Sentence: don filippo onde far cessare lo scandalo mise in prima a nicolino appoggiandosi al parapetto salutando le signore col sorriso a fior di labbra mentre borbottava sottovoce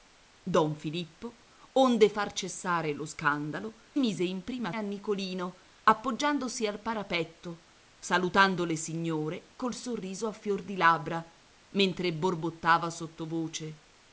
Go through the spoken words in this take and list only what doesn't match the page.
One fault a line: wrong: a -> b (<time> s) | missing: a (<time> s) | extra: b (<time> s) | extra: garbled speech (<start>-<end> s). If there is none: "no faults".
no faults